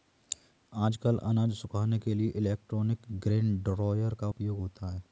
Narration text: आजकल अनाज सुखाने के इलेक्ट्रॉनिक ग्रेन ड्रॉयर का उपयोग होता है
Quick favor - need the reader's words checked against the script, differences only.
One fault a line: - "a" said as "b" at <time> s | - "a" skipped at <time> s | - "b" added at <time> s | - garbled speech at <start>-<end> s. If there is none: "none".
- "लिए" added at 2.1 s